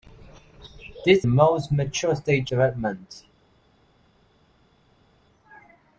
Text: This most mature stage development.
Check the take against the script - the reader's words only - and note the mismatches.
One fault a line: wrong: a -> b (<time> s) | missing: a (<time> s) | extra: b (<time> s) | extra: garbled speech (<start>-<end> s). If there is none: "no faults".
no faults